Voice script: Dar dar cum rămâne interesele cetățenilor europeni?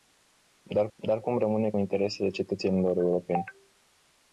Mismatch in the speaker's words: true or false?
false